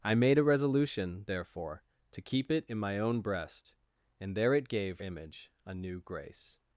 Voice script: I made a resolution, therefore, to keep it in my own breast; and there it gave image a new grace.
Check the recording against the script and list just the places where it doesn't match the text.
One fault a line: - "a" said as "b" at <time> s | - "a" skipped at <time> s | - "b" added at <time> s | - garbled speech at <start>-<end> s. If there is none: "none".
none